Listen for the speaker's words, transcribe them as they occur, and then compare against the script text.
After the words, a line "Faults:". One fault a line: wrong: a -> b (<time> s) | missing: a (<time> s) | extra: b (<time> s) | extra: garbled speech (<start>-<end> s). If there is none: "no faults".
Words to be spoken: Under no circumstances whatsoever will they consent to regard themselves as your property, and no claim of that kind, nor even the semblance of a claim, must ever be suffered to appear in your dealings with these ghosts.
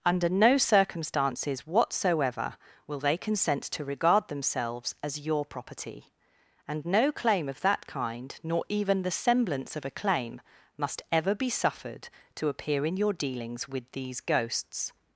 Under no circumstances whatsoever will they consent to regard themselves as your property, and no claim of that kind, nor even the semblance of a claim, must ever be suffered to appear in your dealings with these ghosts.
Faults:
no faults